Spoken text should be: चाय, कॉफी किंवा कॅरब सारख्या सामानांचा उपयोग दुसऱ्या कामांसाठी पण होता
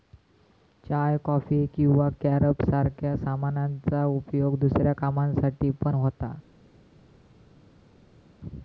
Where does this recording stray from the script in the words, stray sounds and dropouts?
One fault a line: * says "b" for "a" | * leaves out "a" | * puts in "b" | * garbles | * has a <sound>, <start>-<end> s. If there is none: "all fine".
all fine